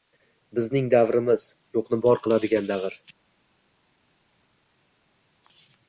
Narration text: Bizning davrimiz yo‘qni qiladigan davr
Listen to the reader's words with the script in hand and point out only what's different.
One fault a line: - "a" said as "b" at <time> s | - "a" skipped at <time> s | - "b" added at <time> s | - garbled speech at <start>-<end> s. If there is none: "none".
- "bor" added at 2.1 s